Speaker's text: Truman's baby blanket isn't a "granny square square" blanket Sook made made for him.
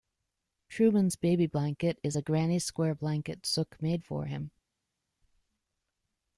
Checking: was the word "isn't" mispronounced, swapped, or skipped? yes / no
yes